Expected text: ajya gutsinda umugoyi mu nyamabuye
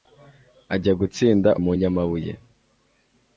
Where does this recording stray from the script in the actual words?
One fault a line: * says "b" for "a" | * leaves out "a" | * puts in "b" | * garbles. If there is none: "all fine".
* leaves out "umugoyi"